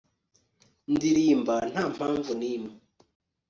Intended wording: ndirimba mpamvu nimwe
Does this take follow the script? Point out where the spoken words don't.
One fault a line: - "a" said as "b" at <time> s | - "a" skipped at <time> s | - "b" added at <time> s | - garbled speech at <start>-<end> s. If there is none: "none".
- "nta" added at 1.7 s